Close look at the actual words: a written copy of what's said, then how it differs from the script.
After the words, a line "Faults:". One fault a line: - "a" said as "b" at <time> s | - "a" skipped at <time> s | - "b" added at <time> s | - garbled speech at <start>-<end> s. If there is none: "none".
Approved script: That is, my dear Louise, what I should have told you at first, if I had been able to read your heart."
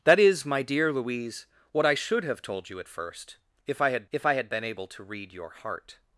That is, my dear Louise, what I should have told you at first, if I had if I had been able to read your heart."
Faults:
- "if I had" added at 4.1 s